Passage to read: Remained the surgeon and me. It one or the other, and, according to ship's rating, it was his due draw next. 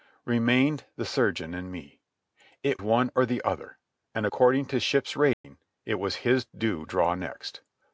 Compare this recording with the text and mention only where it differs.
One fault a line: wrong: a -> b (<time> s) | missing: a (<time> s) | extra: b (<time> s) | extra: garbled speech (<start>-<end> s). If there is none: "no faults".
no faults